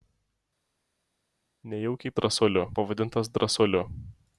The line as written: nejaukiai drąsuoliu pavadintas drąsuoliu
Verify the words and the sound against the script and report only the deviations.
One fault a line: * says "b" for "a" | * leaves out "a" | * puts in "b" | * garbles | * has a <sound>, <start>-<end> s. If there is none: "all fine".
all fine